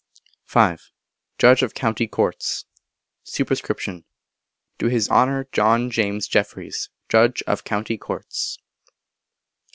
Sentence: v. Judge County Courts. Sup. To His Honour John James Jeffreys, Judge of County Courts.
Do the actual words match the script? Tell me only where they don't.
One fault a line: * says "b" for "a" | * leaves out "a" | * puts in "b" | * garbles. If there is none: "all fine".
* puts in "of"